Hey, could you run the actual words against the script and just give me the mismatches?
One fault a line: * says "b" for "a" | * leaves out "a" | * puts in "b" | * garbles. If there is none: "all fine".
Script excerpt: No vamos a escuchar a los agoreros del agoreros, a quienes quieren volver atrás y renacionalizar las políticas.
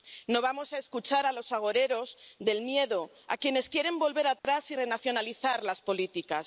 * says "miedo" for "agoreros"